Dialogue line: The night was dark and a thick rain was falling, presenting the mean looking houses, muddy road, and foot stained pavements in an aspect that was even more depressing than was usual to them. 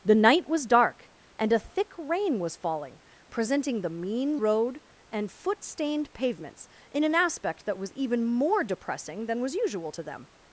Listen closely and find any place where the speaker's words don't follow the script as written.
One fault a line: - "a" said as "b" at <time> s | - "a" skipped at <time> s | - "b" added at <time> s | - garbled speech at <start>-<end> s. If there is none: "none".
- "looking houses muddy" skipped at 4.4 s